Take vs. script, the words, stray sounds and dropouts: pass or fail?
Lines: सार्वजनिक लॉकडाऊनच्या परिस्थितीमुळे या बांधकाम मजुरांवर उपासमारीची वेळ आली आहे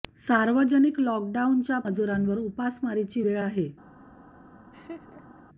fail